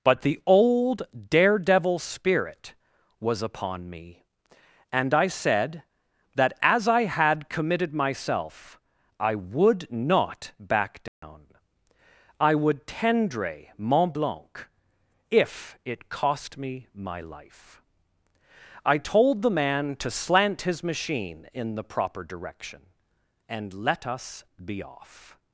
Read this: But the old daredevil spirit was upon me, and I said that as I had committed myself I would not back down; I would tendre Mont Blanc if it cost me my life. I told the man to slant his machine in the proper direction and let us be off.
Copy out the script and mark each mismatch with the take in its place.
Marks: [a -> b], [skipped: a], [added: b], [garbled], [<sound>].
But the old daredevil spirit was upon me, and I said that as I had committed myself I would not back down; [dropout] I would tendre Mont Blanc if it cost me my life. I told the man to slant his machine in the proper direction and let us be off.